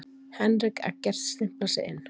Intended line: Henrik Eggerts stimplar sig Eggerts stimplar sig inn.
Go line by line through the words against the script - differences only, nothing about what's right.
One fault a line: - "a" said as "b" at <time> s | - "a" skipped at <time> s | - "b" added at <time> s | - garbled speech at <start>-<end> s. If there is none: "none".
- "Eggerts stimplar sig" skipped at 1.8 s